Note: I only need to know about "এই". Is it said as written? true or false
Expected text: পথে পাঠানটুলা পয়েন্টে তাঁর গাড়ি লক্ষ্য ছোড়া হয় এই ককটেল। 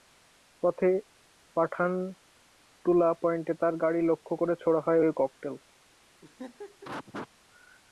false